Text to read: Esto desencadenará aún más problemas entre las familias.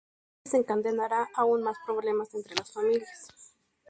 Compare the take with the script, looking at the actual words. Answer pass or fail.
pass